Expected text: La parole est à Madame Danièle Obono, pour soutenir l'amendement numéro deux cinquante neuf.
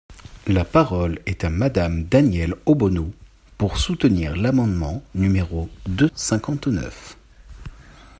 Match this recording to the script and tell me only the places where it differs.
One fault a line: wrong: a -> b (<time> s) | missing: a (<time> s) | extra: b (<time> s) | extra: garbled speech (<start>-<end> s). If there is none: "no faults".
no faults